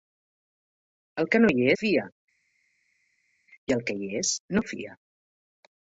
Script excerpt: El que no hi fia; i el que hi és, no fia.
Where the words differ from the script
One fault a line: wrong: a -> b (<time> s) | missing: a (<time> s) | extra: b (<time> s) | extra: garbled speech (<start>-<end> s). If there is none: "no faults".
no faults